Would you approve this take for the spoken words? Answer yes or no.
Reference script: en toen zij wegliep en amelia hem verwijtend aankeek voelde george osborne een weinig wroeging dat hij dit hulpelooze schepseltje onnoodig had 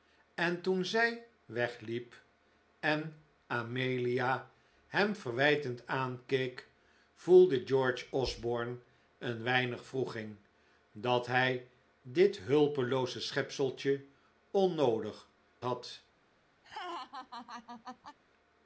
yes